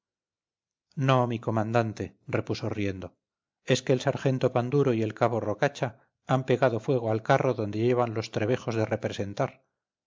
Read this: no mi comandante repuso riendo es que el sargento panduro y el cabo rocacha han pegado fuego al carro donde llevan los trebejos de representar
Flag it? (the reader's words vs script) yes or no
no